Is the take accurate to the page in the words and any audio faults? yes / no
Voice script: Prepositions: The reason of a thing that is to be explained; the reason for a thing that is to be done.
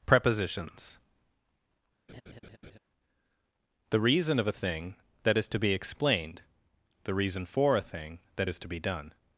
no